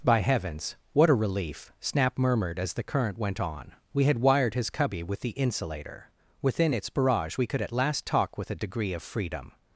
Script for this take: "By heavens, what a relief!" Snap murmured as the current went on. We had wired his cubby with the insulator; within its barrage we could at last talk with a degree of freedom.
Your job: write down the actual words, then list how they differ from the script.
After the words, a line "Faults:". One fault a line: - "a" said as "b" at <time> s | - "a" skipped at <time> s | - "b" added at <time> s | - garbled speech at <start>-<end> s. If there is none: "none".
"By heavens, what a relief!" Snap murmured as the current went on. We had wired his cubby with the insulator; within its barrage we could at last talk with a degree of freedom.
Faults:
none